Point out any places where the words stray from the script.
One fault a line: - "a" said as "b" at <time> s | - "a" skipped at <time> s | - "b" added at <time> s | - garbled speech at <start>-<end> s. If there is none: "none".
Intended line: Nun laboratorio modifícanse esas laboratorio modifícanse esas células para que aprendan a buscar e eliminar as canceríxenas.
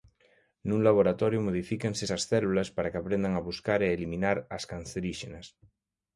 - "laboratorio modifícanse esas" skipped at 2.2 s